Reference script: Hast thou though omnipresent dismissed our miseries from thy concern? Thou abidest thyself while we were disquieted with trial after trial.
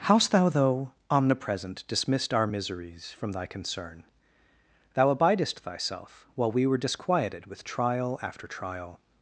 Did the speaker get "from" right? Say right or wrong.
right